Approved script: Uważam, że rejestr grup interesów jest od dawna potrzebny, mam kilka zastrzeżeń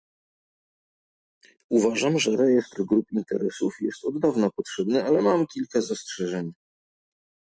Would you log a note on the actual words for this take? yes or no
yes